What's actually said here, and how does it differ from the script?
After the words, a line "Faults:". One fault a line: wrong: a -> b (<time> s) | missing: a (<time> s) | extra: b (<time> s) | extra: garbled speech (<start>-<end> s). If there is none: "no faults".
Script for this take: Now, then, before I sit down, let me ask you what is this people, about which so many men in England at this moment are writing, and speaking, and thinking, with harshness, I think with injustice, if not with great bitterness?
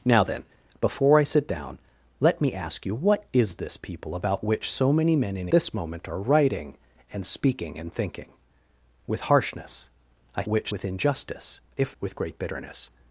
Now, then, before I sit down, let me ask you what is this people, about which so many men in This moment are writing, and speaking, and thinking, with harshness, I which with injustice, if with great bitterness?
Faults:
missing: England at (5.5 s)
wrong: think -> which (10.5 s)
missing: not (12.0 s)